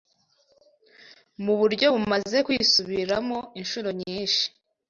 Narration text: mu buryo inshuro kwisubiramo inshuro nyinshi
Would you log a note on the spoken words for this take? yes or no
yes